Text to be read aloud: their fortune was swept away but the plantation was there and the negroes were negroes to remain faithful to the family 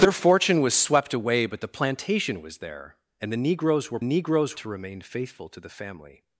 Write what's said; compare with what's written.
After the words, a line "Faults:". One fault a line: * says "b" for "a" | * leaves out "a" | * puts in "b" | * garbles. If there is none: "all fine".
their fortune was swept away but the plantation was there and the negroes were negroes to remain faithful to the family
Faults:
all fine